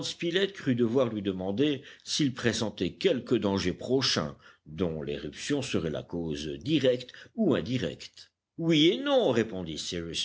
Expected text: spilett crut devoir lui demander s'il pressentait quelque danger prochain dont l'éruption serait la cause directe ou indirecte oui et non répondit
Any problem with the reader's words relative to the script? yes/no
no